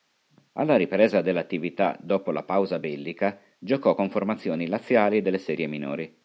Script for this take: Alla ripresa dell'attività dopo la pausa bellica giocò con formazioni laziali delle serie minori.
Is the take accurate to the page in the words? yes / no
yes